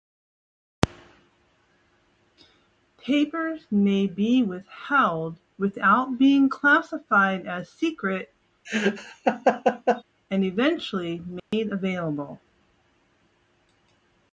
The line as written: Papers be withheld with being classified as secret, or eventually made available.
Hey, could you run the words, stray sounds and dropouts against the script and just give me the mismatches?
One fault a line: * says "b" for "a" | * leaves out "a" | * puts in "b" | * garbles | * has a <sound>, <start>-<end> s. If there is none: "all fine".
* puts in "may"
* says "without" for "with"
* has a laugh, 8.6-10.0 s
* says "and" for "or"
* has a dropout, 11.4-11.5 s